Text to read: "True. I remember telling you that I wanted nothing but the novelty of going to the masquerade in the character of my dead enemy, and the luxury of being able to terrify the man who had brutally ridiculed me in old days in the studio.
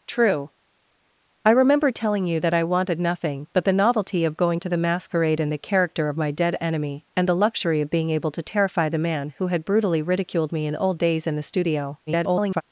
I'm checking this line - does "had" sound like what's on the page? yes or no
yes